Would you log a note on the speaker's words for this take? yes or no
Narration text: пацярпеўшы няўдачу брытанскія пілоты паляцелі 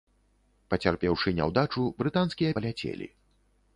yes